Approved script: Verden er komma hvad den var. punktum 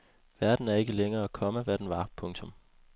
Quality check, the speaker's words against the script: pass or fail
fail